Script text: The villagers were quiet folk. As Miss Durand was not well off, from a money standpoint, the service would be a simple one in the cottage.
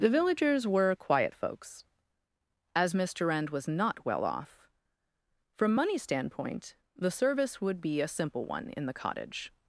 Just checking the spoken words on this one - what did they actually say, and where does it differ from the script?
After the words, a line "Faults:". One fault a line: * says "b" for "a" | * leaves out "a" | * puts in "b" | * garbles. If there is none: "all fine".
The villagers were quiet folks. As Miss Durand was not well off, from money standpoint, the service would be a simple one in the cottage.
Faults:
* says "folks" for "folk"
* leaves out "a"